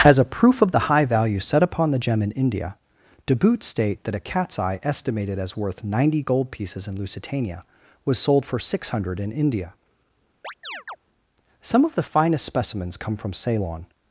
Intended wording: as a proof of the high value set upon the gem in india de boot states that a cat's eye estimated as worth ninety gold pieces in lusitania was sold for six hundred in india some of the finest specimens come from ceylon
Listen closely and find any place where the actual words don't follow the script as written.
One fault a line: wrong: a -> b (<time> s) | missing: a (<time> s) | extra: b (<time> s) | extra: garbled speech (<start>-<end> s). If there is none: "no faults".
wrong: states -> state (3.6 s)